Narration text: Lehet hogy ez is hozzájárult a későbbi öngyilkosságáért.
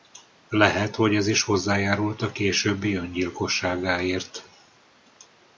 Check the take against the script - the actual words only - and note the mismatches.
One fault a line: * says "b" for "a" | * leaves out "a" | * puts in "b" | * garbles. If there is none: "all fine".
all fine